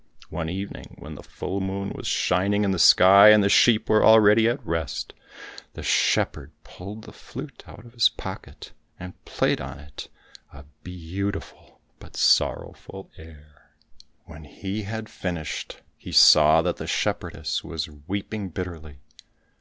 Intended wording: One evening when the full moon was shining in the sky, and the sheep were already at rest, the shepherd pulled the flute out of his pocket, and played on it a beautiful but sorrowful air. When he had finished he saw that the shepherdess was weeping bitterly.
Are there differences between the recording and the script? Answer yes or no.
no